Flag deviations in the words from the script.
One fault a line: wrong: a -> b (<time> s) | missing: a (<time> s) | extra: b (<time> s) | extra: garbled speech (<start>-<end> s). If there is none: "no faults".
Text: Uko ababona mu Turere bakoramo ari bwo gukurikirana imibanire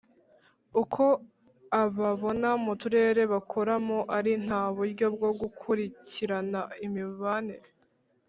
extra: nta buryo (4.5 s)